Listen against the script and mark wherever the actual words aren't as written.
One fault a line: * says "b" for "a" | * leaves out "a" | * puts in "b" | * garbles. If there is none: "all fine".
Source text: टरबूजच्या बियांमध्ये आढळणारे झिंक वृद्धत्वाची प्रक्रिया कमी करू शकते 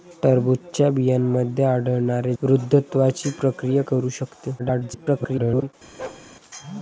* leaves out "झिंक"
* leaves out "कमी"
* garbles